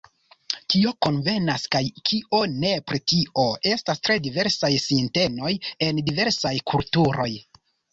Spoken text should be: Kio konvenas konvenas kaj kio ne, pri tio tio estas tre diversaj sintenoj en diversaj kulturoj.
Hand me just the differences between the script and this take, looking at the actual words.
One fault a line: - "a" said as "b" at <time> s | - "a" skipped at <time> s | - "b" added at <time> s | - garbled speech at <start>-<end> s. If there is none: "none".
- "konvenas" skipped at 1.6 s
- "tio" skipped at 3.5 s